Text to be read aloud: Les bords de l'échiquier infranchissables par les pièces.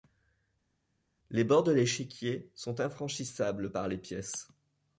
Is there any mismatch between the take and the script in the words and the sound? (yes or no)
yes